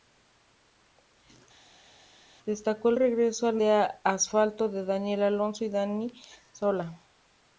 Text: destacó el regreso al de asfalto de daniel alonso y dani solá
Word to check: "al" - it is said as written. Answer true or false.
true